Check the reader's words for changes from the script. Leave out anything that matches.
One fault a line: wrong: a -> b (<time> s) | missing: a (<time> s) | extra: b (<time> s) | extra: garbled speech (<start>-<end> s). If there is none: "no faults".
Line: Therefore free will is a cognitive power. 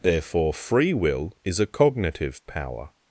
no faults